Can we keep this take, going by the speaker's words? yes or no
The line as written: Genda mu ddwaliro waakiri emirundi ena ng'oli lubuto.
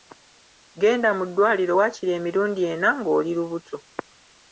yes